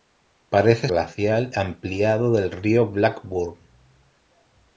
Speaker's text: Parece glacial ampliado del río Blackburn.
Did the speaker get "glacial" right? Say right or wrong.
right